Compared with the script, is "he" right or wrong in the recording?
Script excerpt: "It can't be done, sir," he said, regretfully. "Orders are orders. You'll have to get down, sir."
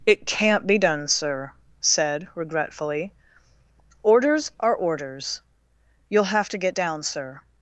wrong